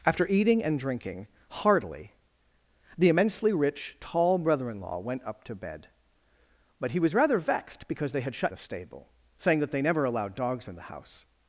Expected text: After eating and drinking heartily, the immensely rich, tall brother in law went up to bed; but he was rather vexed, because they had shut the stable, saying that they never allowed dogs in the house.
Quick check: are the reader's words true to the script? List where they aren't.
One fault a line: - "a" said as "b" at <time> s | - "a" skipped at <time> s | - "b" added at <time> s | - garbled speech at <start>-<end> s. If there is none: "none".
none